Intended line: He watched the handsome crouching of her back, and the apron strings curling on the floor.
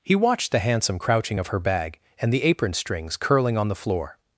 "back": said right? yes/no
no